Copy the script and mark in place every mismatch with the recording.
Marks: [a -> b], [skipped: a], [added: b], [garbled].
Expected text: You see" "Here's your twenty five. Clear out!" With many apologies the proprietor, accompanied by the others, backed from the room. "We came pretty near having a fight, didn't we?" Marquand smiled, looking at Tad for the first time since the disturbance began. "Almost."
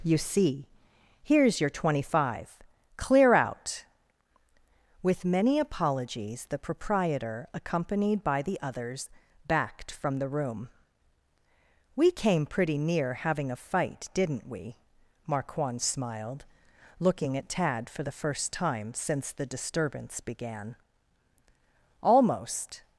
You see" "Here's your twenty five. Clear out!" With many apologies the proprietor, accompanied by the others, backed from the room. "We came pretty near having a fight, didn't we?" Marquand smiled, looking at Tad for the first time since the disturbance began. "Almost."